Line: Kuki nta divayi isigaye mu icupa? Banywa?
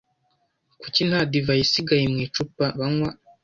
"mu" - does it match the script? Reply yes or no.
yes